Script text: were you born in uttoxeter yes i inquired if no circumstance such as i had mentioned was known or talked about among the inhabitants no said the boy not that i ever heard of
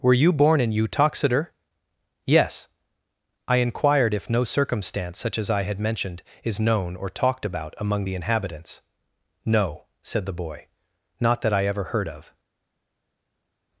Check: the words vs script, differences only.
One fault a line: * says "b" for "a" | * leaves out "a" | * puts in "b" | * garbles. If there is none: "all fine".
* says "is" for "was"